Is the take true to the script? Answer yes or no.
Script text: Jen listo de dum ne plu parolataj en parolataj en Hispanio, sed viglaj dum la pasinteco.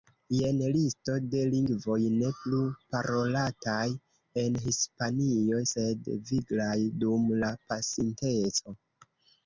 no